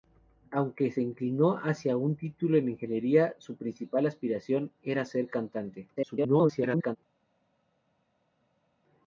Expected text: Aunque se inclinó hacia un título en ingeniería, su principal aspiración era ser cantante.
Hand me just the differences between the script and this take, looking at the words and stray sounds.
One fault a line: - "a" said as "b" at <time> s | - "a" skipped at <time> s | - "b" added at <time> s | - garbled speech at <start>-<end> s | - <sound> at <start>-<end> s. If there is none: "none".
- garbled speech at 6.0-7.0 s